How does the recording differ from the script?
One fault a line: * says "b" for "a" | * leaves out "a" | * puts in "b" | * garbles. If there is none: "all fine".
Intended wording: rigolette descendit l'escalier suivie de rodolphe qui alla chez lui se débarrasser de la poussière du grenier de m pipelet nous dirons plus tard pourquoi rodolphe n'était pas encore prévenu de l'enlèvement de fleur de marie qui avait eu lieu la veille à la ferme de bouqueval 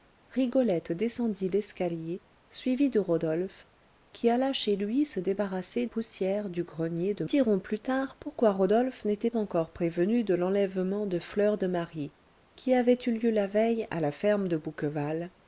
* leaves out "de la"
* leaves out "m pipelet nous"
* leaves out "pas"